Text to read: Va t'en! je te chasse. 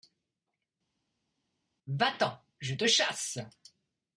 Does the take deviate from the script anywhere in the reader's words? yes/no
no